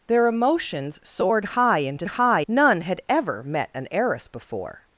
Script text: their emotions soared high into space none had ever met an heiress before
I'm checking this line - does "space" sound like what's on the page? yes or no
no